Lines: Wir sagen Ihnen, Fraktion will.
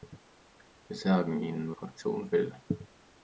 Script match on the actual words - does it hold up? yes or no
yes